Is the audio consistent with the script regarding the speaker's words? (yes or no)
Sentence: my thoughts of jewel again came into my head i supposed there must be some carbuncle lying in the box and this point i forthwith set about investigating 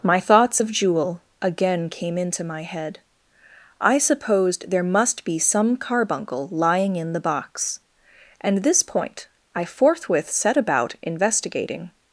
yes